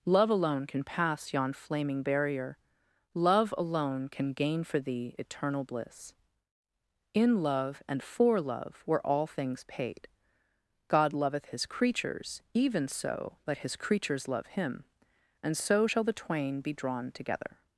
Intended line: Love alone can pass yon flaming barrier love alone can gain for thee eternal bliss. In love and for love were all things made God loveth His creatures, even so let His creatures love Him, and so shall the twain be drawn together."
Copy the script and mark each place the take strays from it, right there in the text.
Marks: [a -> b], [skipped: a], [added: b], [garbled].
Love alone can pass yon flaming barrier love alone can gain for thee eternal bliss. In love and for love were all things [made -> paid] God loveth His creatures, even so let His creatures love Him, and so shall the twain be drawn together."